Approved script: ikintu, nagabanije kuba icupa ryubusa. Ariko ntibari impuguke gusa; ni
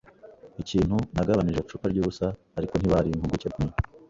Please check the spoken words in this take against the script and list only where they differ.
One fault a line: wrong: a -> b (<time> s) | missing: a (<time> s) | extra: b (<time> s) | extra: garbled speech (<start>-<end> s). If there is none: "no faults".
missing: kuba (1.6 s)
missing: gusa (3.5 s)